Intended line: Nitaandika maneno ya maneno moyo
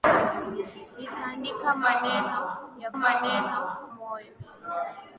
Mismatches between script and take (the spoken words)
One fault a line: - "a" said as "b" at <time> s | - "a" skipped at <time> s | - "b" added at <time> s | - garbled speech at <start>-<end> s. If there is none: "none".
none